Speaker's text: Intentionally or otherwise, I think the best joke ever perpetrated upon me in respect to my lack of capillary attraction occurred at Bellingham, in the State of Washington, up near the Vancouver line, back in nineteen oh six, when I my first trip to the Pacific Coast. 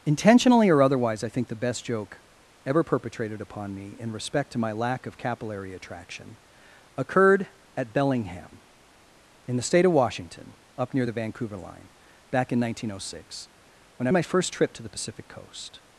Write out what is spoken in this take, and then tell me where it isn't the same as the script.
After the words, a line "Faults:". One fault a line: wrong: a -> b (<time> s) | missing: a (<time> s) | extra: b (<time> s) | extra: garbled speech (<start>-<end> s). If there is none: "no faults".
Intentionally or otherwise, I think the best joke ever perpetrated upon me in respect to my lack of capillary attraction occurred at Bellingham, in the State of Washington, up near the Vancouver line, back in nineteen oh six, when I my first trip to the Pacific Coast.
Faults:
no faults